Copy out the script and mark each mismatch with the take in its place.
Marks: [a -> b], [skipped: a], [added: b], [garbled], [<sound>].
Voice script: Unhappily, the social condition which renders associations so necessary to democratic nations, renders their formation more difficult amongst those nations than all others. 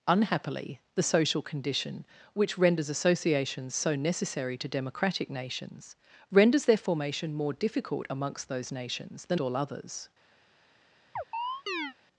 Unhappily, the social condition which renders associations so necessary to democratic nations, renders their formation more difficult amongst those nations than all others. [chirp]